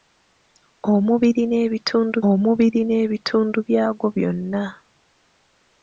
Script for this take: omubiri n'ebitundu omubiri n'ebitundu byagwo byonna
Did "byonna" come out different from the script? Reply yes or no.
no